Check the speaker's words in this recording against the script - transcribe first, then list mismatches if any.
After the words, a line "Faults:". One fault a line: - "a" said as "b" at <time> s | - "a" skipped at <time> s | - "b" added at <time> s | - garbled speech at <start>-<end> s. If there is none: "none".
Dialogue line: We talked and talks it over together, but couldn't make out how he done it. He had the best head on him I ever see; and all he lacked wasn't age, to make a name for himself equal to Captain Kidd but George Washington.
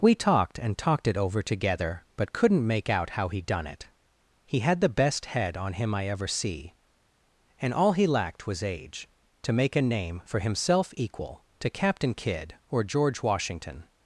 We talked and talked it over together, but couldn't make out how he done it. He had the best head on him I ever see; and all he lacked was age, to make a name for himself equal to Captain Kidd or George Washington.
Faults:
- "talks" said as "talked" at 0.8 s
- "wasn't" said as "was" at 8.5 s
- "but" said as "or" at 12.7 s